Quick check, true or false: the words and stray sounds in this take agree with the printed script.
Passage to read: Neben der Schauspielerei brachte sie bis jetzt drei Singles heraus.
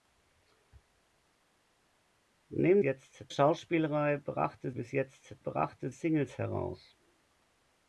false